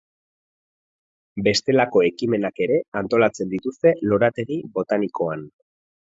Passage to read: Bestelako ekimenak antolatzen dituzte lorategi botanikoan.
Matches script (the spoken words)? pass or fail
fail